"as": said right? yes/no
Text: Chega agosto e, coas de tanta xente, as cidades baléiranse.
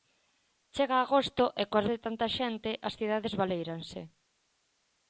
yes